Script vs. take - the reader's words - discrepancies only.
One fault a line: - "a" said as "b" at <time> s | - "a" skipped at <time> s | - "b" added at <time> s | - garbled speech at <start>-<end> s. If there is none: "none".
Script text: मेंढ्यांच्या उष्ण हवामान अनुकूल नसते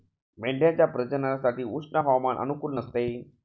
- "प्रजननासाठी" added at 0.9 s